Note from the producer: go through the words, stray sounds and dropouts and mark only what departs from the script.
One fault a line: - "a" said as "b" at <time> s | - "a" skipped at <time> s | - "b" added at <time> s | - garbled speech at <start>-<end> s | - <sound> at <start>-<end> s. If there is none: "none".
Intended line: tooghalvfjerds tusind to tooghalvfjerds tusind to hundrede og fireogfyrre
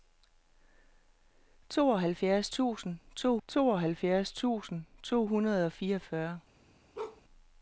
- bark at 6.9-7.2 s